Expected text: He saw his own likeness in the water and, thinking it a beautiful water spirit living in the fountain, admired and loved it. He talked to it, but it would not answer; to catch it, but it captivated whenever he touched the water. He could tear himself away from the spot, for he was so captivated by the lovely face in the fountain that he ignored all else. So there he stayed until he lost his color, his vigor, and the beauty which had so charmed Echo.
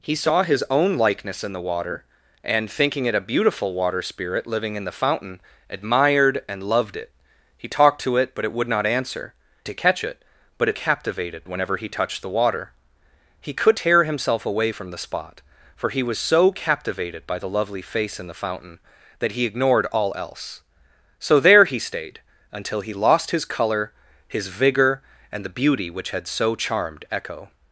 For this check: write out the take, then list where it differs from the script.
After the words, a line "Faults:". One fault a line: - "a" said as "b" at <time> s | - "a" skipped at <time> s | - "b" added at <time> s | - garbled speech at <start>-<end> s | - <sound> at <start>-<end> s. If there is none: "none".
He saw his own likeness in the water and, thinking it a beautiful water spirit living in the fountain, admired and loved it. He talked to it, but it would not answer; to catch it, but it captivated whenever he touched the water. He could tear himself away from the spot, for he was so captivated by the lovely face in the fountain that he ignored all else. So there he stayed until he lost his color, his vigor, and the beauty which had so charmed Echo.
Faults:
none